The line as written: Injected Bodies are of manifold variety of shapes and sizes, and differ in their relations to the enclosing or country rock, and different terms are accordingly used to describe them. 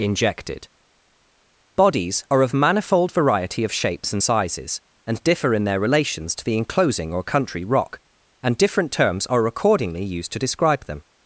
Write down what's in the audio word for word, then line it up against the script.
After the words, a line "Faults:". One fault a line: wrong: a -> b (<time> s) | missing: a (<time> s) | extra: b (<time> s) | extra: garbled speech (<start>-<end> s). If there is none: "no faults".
Injected Bodies are of manifold variety of shapes and sizes, and differ in their relations to the enclosing or country rock, and different terms are accordingly used to describe them.
Faults:
no faults